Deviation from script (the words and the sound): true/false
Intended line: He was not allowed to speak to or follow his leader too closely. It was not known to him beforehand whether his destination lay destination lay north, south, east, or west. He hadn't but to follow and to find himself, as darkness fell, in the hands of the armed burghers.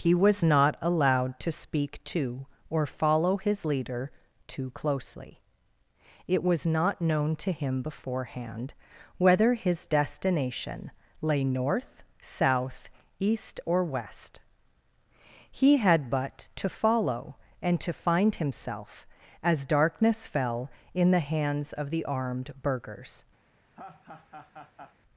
true